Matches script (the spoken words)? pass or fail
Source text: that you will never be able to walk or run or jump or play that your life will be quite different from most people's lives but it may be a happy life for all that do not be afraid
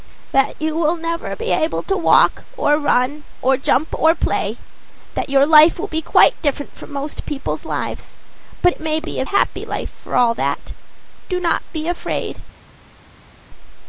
pass